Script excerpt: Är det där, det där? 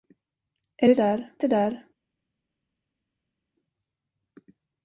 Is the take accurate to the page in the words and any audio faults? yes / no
yes